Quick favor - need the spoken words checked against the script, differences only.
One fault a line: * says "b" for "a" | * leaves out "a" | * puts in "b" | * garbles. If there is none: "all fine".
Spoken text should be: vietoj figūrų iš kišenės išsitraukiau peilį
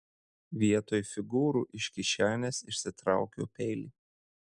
all fine